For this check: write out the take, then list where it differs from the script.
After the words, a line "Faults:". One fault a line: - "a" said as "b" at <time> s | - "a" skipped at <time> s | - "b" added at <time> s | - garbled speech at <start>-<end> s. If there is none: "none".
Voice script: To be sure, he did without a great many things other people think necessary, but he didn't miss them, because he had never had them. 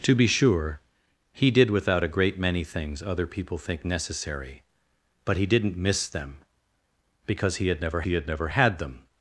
To be sure, he did without a great many things other people think necessary, but he didn't miss them, because he had never he had never had them.
Faults:
- "he had never" added at 8.0 s